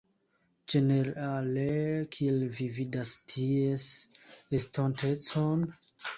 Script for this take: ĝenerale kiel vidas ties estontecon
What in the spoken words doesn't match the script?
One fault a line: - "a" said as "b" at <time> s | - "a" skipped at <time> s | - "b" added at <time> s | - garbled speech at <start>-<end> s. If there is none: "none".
- "vi" added at 2.6 s